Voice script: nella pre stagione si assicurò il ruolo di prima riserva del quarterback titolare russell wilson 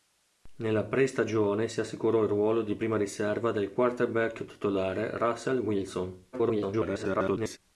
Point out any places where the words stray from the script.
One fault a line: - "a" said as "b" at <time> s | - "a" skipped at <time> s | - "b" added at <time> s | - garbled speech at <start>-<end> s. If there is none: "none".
- garbled speech at 6.3-7.6 s